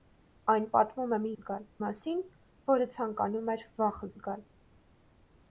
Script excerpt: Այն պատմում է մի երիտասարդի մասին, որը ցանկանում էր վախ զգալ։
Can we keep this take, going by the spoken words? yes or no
no